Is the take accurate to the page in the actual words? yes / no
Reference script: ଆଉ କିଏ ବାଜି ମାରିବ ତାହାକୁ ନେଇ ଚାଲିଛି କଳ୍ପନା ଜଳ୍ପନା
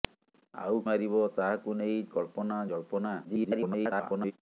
no